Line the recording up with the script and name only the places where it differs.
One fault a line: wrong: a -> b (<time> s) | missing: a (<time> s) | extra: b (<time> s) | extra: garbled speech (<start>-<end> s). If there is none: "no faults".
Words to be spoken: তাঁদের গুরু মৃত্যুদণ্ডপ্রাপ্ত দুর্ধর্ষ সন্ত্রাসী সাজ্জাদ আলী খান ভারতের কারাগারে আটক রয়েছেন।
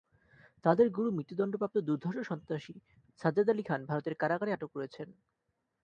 no faults